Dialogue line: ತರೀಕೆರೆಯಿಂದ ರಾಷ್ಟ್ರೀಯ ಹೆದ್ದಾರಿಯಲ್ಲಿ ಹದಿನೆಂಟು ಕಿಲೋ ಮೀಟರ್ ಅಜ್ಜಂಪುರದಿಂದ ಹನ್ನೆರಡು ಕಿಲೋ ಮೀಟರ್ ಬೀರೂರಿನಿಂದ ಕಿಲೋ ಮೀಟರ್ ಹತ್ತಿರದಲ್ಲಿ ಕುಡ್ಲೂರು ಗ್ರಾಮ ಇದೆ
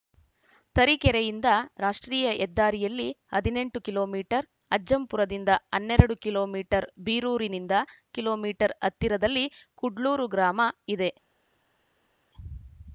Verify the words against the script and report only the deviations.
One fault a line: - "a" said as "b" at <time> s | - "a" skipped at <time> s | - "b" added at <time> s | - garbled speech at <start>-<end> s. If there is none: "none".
none